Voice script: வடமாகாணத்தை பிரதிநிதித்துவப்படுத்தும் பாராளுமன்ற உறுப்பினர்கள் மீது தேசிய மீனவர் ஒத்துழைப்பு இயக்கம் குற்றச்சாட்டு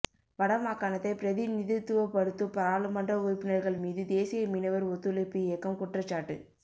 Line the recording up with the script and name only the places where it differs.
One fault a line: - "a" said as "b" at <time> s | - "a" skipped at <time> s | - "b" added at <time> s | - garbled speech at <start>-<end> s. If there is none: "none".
none